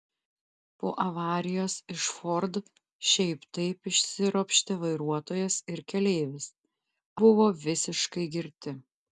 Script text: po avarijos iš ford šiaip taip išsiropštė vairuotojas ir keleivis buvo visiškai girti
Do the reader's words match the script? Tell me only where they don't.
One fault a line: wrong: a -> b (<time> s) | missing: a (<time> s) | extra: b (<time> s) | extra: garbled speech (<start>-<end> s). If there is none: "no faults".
no faults